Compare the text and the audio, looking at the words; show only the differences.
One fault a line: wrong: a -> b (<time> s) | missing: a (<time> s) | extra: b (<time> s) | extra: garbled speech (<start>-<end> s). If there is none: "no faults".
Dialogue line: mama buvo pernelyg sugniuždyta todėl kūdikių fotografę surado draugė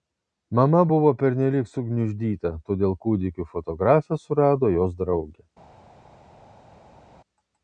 extra: jos (4.8 s)